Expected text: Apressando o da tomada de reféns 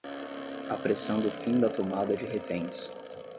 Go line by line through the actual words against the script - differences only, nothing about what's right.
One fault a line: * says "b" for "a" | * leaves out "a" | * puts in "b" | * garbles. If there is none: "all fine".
* puts in "fim"